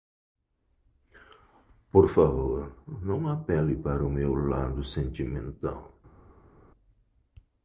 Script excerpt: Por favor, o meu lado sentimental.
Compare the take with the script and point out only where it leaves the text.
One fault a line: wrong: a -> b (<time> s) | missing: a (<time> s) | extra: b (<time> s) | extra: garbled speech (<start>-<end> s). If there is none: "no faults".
extra: não apele para (3.0 s)